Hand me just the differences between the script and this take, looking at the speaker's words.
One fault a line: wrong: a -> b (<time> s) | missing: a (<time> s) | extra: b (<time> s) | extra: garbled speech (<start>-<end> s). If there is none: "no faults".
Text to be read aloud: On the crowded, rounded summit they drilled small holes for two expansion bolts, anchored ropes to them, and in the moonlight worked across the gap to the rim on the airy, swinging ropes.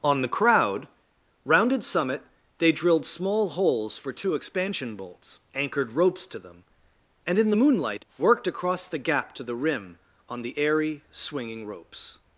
wrong: crowded -> crowd (0.3 s)